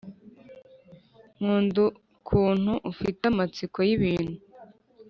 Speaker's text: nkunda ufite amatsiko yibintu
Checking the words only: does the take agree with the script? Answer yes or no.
no